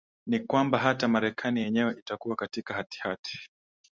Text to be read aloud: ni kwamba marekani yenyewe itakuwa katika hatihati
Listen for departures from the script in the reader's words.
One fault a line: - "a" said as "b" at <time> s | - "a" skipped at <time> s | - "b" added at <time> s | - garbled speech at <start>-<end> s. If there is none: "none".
- "hata" added at 0.8 s